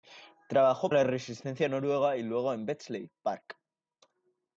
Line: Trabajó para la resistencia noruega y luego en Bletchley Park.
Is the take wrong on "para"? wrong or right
wrong